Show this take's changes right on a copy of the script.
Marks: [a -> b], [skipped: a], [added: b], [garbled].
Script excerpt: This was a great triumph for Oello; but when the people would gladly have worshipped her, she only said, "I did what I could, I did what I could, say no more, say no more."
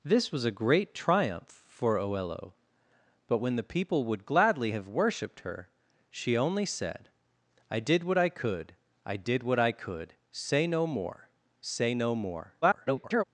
This was a great triumph for Oello; but when the people would gladly have worshipped her, she only said, "I did what I could, I did what I could, say no more, say no more." [garbled]